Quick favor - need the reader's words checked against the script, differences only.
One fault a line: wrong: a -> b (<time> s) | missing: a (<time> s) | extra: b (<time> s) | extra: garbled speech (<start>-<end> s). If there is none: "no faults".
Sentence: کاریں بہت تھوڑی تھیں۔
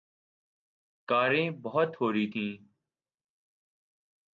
no faults